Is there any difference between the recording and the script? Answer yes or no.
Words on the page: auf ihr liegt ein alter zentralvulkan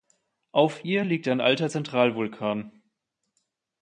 no